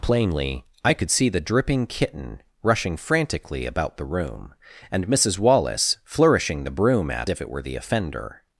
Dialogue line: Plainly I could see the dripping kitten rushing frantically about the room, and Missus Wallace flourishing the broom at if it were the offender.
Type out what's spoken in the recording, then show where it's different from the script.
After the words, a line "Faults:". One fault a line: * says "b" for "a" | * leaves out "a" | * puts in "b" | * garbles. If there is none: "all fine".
Plainly I could see the dripping kitten rushing frantically about the room, and Missus Wallace flourishing the broom at if it were the offender.
Faults:
all fine